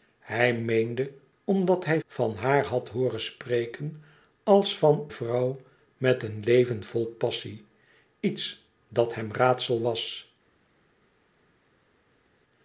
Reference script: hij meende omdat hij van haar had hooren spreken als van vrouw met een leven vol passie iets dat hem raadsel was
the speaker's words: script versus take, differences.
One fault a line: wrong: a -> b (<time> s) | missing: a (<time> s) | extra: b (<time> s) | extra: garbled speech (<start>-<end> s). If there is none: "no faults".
no faults